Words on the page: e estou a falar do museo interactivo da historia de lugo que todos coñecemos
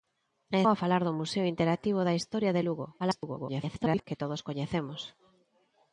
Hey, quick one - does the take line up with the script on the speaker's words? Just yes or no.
no